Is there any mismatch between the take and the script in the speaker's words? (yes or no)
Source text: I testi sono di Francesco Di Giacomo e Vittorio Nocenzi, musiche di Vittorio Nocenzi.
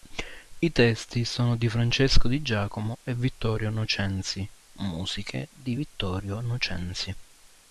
no